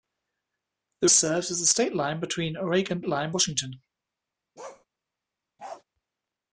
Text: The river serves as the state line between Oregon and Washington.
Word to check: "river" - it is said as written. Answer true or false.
false